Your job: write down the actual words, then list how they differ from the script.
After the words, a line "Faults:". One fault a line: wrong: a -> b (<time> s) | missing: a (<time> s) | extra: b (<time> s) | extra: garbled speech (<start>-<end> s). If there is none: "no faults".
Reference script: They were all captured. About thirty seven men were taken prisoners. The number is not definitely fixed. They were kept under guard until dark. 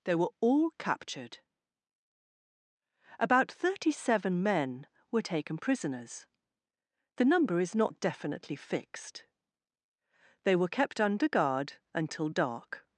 They were all captured. About thirty seven men were taken prisoners. The number is not definitely fixed. They were kept under guard until dark.
Faults:
no faults